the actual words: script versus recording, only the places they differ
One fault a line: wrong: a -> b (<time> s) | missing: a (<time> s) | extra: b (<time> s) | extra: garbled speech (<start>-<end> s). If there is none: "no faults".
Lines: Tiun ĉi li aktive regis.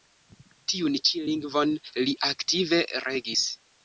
extra: lingvon (1.3 s)